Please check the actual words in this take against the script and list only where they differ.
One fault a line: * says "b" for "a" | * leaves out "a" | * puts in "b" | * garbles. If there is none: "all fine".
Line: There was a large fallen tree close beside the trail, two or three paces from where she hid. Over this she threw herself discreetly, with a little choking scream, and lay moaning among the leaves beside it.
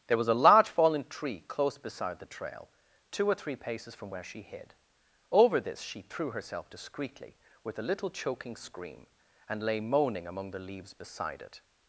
all fine